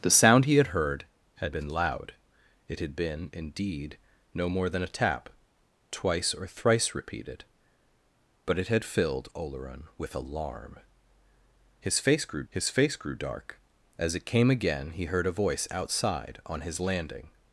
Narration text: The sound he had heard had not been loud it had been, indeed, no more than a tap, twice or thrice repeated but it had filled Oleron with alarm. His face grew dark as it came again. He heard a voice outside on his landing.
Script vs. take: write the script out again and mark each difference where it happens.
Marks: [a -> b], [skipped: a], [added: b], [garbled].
The sound he had heard had [skipped: not] been loud it had been, indeed, no more than a tap, twice or thrice repeated but it had filled Oleron with alarm. His face grew [added: his face grew] dark as it came again. He heard a voice outside on his landing.